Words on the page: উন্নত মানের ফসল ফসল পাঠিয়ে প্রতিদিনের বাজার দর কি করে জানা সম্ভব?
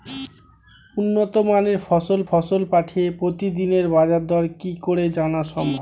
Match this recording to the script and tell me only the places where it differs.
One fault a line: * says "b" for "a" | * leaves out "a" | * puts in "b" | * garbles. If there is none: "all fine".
all fine